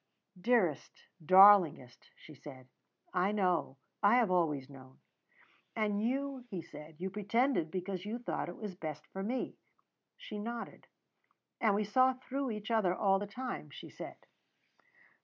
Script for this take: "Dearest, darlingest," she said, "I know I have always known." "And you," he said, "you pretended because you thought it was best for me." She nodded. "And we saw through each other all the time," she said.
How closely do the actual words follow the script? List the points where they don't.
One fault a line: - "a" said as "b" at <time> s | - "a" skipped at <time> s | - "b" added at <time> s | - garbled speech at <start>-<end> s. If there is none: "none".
none